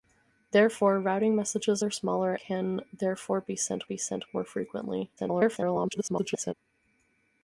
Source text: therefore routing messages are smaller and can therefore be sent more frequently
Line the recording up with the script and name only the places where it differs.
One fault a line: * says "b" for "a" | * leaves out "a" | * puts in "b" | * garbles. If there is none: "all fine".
* leaves out "and"
* puts in "be sent"
* garbles